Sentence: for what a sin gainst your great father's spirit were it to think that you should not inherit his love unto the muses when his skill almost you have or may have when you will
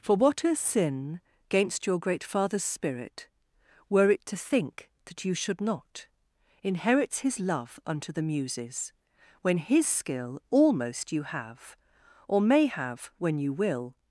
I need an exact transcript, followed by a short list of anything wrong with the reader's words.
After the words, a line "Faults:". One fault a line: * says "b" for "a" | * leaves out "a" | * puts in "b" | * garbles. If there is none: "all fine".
for what a sin gainst your great father's spirit were it to think that you should not inherits his love unto the muses when his skill almost you have or may have when you will
Faults:
* says "inherits" for "inherit"